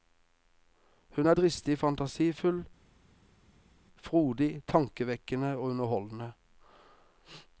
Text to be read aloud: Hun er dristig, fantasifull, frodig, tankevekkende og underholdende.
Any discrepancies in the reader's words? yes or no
no